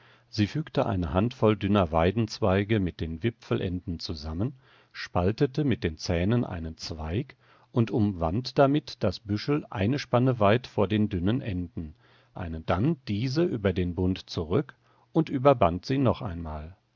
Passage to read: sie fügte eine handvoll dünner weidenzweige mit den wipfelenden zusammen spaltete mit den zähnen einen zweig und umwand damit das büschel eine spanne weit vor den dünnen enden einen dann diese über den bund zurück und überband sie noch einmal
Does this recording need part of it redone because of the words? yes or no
no